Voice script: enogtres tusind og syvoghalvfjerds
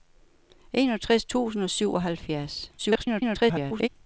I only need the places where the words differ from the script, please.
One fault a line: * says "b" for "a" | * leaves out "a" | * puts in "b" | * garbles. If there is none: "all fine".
* garbles